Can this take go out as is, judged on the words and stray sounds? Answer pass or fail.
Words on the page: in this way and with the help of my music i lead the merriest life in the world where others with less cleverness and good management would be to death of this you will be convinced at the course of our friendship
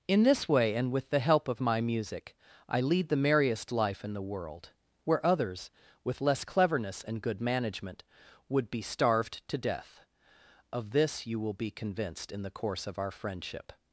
fail